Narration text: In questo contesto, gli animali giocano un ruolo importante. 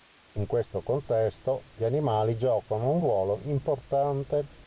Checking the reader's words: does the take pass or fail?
pass